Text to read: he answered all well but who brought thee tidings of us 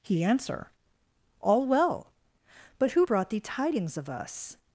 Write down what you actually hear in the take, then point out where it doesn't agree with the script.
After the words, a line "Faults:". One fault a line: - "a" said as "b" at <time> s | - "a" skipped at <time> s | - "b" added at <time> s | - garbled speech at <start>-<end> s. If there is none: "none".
he answer all well but who brought thee tidings of us
Faults:
- "answered" said as "answer" at 0.2 s